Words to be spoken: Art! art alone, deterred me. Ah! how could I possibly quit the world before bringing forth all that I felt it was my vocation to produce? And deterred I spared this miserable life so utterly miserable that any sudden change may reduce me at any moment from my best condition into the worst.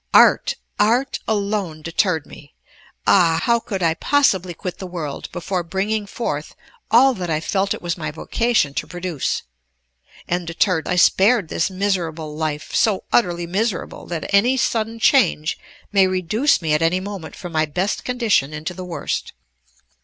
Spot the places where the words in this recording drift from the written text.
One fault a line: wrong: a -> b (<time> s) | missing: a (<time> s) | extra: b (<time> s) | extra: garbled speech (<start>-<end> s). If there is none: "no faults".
no faults